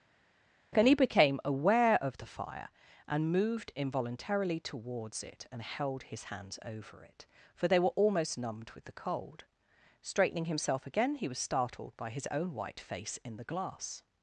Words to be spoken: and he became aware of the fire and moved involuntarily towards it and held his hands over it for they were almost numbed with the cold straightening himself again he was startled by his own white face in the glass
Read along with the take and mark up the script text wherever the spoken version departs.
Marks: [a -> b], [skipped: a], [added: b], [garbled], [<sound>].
and he became aware of the fire and moved involuntarily towards it and held his hands over it for they were almost numbed with the cold straightening himself again he was startled by his own white face in the glass